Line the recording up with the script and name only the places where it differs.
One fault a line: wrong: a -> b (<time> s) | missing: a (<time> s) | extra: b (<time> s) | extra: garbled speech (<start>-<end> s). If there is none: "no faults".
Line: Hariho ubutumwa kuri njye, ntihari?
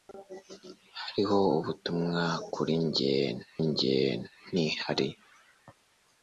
extra: njye (3.7 s)